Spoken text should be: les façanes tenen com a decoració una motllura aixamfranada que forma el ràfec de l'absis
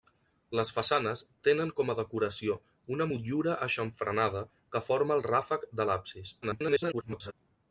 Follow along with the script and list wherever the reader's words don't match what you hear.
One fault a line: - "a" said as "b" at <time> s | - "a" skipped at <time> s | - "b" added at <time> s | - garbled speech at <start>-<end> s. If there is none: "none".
- garbled speech at 6.4-7.3 s